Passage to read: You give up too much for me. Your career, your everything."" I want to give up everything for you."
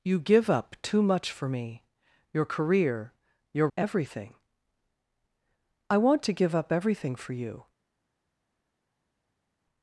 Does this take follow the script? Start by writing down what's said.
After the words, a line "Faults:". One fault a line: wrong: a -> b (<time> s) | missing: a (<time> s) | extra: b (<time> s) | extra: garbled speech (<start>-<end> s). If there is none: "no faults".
You give up too much for me. Your career, your everything."" I want to give up everything for you."
Faults:
no faults